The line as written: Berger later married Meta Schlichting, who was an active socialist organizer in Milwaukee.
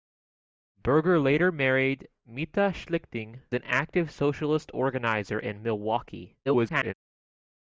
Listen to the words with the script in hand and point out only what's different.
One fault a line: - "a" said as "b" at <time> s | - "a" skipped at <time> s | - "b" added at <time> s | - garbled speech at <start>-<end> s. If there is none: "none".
- "who was" skipped at 3.4 s
- garbled speech at 6.5-6.9 s